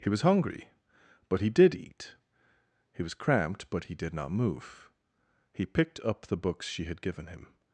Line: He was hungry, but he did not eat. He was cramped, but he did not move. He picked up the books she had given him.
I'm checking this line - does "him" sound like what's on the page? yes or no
yes